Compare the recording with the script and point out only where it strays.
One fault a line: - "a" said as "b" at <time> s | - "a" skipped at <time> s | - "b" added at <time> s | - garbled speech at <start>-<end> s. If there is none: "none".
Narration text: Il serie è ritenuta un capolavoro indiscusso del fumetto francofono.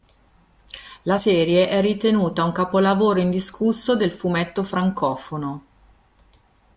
- "Il" said as "La" at 1.0 s